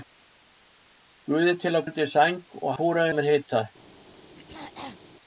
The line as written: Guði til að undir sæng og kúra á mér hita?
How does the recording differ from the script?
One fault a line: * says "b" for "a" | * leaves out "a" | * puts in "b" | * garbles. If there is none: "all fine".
all fine